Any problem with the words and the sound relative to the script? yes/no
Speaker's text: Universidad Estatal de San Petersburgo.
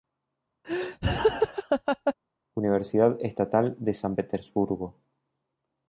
yes